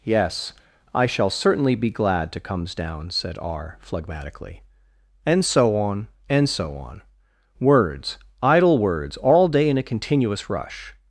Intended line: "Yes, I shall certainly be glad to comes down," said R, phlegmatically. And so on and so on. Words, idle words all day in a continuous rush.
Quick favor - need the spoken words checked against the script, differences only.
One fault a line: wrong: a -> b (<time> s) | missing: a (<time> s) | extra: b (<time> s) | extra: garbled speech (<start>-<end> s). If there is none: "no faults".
no faults